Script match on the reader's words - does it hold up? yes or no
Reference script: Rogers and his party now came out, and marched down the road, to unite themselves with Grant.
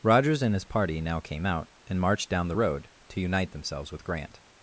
yes